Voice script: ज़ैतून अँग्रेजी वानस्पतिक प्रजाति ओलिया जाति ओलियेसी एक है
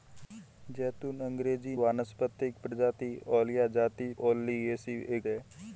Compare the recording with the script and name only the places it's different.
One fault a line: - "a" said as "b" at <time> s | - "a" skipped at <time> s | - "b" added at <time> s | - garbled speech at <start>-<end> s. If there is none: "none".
none